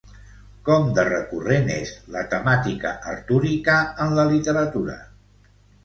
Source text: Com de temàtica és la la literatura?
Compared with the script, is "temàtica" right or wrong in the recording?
wrong